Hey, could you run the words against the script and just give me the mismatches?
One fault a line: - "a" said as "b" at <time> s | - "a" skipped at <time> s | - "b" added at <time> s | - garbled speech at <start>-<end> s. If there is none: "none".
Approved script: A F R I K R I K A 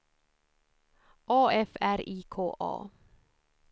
- "R I K" skipped at 2.5 s